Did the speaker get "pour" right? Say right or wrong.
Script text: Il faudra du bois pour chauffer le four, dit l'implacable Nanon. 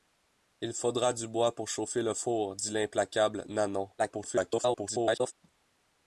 right